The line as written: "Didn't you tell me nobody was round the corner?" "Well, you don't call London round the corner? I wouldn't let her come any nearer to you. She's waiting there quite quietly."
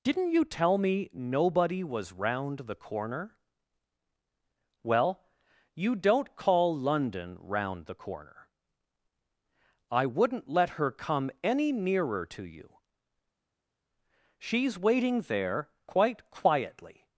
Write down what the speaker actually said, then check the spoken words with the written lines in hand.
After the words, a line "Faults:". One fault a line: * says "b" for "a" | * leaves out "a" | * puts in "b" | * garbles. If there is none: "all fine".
"Didn't you tell me nobody was round the corner?" "Well, you don't call London round the corner? I wouldn't let her come any nearer to you. She's waiting there quite quietly."
Faults:
all fine